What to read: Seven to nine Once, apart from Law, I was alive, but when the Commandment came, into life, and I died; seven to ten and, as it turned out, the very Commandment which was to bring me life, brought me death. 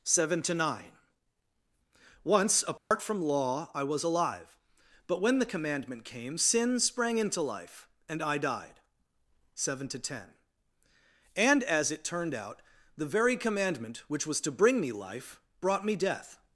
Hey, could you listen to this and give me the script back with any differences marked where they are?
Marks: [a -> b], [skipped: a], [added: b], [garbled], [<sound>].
Seven to nine Once, apart [dropout] from Law, I was alive, but when the Commandment came, [added: sin sprang] into life, and I died; seven to ten and, as it turned out, the very Commandment which was to bring me life, brought me death.